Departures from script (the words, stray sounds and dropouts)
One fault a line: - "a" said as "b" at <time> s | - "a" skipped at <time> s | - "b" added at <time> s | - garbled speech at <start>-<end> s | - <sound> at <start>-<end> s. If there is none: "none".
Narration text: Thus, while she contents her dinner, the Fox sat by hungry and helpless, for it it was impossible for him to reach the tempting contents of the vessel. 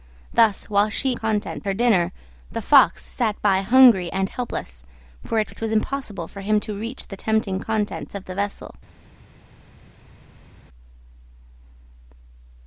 none